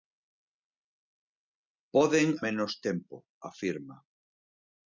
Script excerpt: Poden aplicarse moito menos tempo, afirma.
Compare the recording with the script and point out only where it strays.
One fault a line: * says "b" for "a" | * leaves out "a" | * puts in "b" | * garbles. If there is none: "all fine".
* leaves out "aplicarse moito"